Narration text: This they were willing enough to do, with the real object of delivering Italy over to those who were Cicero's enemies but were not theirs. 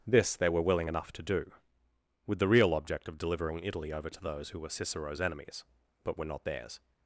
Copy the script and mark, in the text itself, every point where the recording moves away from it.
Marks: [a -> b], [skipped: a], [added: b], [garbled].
This they were willing enough to do, with the real object of delivering Italy over to those who were Cicero's enemies but were not theirs.